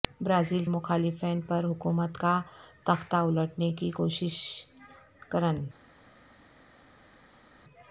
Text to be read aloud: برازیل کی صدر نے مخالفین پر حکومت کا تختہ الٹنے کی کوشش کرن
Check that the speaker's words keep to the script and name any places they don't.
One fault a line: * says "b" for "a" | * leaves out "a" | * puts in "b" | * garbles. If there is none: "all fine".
* leaves out "کی صدر نے"